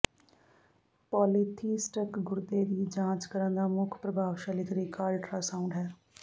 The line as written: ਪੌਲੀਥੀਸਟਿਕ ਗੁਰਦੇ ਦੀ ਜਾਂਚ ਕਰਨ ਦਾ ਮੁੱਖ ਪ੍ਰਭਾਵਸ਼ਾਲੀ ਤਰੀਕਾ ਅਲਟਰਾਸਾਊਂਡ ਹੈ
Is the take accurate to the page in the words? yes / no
yes